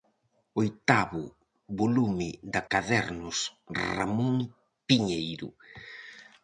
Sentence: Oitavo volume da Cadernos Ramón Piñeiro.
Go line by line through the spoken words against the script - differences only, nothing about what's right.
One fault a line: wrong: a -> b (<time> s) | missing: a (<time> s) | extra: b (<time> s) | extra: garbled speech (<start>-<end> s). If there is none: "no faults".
no faults